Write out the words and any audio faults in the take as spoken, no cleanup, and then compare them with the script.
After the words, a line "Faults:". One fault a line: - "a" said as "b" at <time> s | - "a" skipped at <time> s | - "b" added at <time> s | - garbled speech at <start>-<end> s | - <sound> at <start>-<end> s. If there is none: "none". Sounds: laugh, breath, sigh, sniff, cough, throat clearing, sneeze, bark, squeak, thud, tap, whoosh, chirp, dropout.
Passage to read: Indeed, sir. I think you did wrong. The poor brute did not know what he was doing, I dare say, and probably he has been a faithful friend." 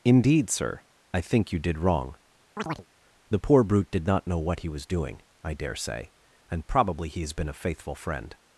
Indeed, sir. I think you did wrong. The poor brute did not know what he was doing, I dare say, and probably he has been a faithful friend."
Faults:
- chirp at 2.6-2.9 s